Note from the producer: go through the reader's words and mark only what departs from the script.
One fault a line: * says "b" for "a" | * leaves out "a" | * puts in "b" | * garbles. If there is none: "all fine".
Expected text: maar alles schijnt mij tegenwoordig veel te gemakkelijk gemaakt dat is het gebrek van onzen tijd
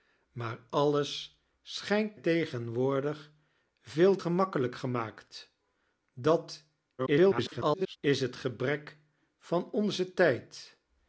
* leaves out "mij"
* leaves out "te"
* garbles